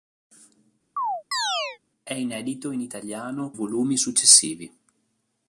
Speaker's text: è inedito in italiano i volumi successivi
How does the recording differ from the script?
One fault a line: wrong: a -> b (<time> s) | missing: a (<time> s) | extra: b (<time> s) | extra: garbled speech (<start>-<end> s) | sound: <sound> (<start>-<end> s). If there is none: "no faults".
sound: chirp (1.0-1.8 s)